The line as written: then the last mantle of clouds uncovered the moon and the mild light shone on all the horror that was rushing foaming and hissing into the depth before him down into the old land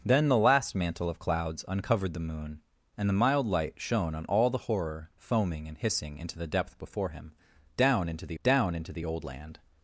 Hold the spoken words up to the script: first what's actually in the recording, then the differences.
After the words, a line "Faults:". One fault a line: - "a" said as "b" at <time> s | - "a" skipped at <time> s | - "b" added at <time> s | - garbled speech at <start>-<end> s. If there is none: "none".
then the last mantle of clouds uncovered the moon and the mild light shone on all the horror foaming and hissing into the depth before him down into the down into the old land
Faults:
- "that was rushing" skipped at 5.1 s
- "down into the" added at 8.4 s